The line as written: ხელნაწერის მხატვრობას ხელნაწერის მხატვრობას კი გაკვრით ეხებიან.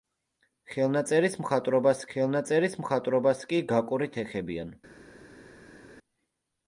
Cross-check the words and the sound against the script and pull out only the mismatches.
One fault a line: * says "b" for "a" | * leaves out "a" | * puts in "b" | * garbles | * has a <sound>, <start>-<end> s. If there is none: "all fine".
all fine